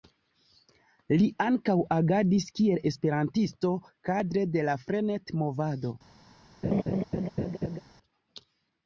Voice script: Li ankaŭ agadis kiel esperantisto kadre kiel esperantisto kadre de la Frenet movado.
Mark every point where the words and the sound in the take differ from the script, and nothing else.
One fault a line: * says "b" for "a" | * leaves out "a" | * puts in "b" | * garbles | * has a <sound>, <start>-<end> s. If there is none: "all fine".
* leaves out "kiel esperantisto kadre"
* has a laugh, 6.6-7.8 s